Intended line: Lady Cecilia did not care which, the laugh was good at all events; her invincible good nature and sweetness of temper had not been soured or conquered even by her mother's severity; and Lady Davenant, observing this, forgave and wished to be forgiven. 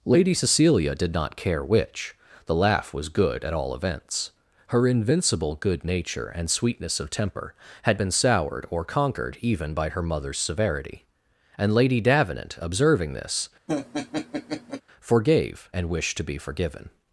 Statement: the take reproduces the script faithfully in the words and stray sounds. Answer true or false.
false